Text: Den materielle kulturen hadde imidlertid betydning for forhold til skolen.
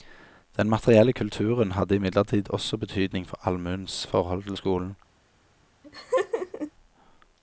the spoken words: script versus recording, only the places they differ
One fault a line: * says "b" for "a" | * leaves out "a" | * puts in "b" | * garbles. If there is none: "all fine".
* puts in "også"
* puts in "allmuens"